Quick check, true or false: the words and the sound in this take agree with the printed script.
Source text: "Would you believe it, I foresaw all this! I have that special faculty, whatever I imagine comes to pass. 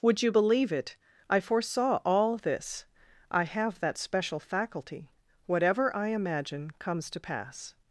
true